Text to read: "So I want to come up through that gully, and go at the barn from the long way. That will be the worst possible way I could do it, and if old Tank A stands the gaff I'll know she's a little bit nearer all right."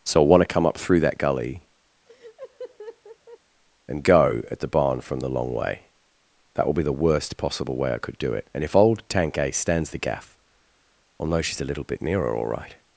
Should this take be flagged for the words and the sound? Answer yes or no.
yes